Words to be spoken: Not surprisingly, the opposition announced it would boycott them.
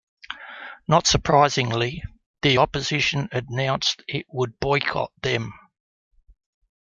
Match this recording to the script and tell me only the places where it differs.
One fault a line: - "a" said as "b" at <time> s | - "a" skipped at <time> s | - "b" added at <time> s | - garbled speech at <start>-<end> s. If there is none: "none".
none